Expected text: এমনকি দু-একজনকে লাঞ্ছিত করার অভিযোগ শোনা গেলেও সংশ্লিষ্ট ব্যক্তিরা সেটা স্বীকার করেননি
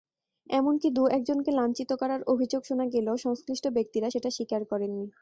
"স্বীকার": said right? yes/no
yes